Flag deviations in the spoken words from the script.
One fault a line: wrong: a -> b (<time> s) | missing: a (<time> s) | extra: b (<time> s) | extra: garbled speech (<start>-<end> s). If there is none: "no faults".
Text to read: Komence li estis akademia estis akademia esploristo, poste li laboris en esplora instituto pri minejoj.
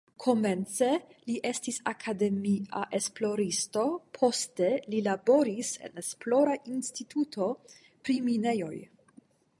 missing: estis akademia (2.8 s)